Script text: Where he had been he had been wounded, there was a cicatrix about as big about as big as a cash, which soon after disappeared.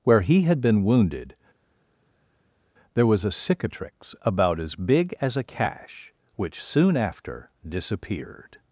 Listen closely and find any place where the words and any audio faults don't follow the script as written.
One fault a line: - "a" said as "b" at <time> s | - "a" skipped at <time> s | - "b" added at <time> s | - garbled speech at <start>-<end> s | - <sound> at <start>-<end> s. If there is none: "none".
- "he had been" skipped at 0.8 s
- "about as big" skipped at 5.1 s